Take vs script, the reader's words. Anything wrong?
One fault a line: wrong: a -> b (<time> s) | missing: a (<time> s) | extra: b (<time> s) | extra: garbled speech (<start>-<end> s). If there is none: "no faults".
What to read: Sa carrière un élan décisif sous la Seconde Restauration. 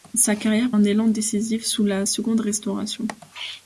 no faults